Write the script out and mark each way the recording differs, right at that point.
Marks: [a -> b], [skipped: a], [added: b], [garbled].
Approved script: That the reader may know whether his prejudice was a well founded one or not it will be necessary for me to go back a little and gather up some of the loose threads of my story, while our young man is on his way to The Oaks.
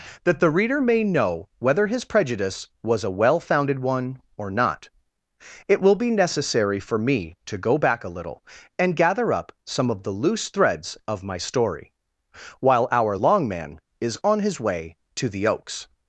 That the reader may know whether his prejudice was a well founded one or not it will be necessary for me to go back a little and gather up some of the loose threads of my story, while our [young -> long] man is on his way to The Oaks.